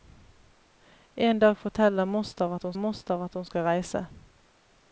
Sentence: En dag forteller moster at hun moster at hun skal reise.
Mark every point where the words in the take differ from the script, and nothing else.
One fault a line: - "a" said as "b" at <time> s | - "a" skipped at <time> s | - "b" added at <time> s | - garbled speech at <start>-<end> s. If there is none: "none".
none